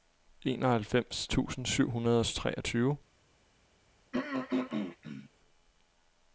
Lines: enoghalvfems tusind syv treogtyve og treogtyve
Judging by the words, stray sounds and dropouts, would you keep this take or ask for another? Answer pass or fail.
fail